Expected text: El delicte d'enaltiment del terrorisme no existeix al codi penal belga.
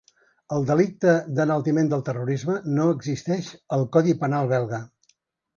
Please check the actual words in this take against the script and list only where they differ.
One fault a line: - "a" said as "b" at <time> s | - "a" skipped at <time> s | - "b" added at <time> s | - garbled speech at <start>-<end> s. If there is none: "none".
none